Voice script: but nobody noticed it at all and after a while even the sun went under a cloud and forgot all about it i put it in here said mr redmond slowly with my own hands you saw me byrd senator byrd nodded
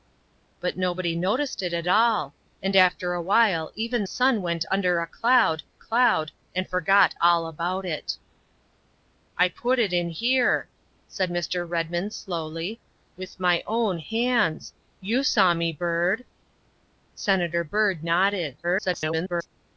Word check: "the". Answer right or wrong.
wrong